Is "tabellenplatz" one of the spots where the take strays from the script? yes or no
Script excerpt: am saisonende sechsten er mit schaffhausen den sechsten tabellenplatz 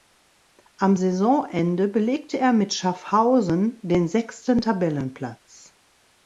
no